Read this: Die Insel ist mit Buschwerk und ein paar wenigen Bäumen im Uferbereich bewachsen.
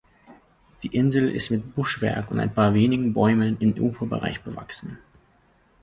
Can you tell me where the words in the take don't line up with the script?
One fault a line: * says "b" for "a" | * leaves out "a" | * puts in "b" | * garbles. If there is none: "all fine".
all fine